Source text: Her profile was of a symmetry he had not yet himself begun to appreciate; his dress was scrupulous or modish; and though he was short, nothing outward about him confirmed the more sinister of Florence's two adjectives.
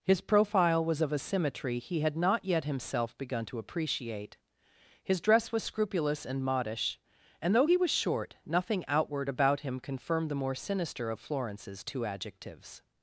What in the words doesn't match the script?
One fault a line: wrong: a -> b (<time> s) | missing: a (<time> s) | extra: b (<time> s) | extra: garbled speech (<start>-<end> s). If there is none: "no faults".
wrong: Her -> His (0.0 s)
wrong: or -> and (6.2 s)